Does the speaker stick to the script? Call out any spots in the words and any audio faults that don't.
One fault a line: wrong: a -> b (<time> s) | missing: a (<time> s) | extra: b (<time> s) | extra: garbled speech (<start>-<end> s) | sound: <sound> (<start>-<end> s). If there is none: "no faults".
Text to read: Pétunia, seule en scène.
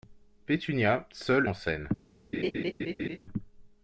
sound: laugh (2.3-3.2 s)